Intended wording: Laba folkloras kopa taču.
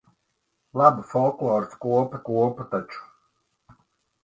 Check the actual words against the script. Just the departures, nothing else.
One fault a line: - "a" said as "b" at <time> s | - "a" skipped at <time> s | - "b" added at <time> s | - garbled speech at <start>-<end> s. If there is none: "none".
- "kopa" added at 2.3 s